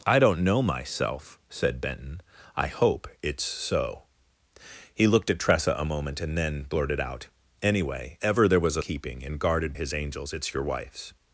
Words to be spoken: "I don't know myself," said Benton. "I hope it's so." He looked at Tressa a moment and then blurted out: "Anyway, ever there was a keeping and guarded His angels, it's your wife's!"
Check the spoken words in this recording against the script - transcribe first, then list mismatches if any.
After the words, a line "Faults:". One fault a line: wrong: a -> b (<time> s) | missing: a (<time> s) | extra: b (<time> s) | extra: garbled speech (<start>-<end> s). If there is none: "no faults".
"I don't know myself," said Benton. "I hope it's so." He looked at Tressa a moment and then blurted out: "Anyway, ever there was a keeping and guarded His angels, it's your wife's!"
Faults:
no faults